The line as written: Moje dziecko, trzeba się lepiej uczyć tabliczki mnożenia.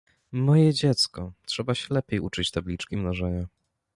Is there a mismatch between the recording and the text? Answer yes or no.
no